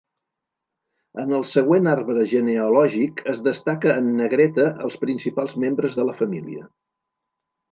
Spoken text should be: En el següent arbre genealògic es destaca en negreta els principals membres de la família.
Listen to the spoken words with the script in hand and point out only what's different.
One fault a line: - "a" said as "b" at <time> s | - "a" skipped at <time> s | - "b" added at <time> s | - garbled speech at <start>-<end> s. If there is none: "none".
none